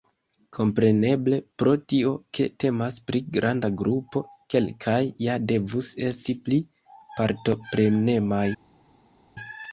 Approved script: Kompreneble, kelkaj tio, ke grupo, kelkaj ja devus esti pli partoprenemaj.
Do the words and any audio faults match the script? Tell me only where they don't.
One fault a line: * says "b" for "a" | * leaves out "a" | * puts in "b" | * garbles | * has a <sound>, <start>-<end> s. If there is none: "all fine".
* says "pro" for "kelkaj"
* puts in "temas pri granda"